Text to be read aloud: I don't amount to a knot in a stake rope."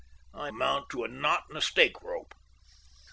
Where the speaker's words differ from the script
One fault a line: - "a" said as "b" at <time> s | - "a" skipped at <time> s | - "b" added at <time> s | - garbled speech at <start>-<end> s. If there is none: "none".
- "don't" skipped at 0.5 s